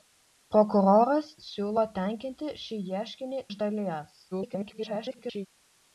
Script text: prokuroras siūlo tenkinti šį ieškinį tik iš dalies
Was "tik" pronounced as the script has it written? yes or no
no